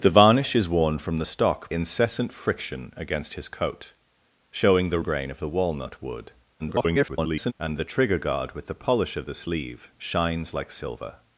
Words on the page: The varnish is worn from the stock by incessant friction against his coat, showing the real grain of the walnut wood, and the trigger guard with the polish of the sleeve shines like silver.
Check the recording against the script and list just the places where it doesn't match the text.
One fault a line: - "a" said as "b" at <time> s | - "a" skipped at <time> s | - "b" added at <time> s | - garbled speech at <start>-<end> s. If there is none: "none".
- "by" skipped at 1.7 s
- "real" skipped at 5.0 s
- garbled speech at 6.6-7.5 s